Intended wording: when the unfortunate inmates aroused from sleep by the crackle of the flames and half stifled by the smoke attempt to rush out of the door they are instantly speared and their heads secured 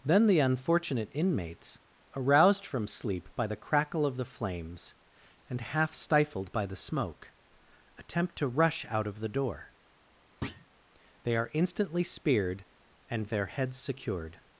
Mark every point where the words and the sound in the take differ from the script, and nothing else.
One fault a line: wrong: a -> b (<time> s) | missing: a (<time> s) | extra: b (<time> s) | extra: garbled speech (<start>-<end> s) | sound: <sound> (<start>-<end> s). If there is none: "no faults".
wrong: when -> then (0.0 s)
sound: thud (10.4-10.7 s)